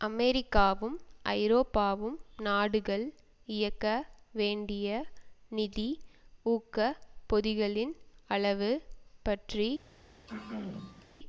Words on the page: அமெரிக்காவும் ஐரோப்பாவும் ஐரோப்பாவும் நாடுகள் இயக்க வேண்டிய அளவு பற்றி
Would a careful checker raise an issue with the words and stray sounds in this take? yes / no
yes